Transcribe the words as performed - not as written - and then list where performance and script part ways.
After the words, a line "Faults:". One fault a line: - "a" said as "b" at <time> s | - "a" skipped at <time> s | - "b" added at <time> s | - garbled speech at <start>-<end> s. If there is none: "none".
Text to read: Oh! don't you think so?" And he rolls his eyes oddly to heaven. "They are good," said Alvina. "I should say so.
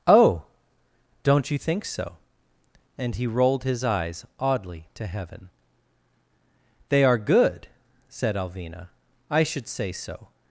Oh! don't you think so?" And he rolled his eyes oddly to heaven. "They are good," said Alvina. "I should say so.
Faults:
- "rolls" said as "rolled" at 3.3 s